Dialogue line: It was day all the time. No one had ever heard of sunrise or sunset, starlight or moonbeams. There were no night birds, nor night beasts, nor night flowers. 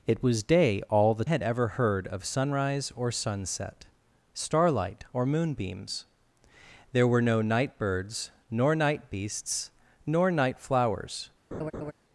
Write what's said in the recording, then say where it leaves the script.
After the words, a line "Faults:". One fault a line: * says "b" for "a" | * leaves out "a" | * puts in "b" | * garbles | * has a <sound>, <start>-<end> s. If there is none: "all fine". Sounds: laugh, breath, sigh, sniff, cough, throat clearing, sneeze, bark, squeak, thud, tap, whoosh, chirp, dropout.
It was day all the had ever heard of sunrise or sunset, starlight or moonbeams. There were no night birds, nor night beasts, nor night flowers.
Faults:
* leaves out "time No one"
* has a laugh, 11.5-11.9 s